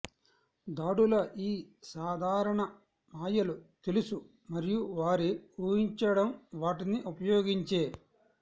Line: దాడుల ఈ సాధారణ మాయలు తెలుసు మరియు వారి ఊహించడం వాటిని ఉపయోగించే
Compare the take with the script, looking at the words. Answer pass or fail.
pass